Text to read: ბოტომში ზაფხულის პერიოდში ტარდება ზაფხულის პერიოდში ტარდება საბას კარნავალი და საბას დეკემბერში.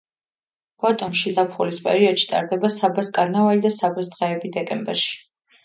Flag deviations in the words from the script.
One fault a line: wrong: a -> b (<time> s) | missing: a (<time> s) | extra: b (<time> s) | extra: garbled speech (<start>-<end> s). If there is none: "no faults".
missing: ზაფხულის პერიოდში ტარდება (2.7 s)
extra: დღეები (4.2 s)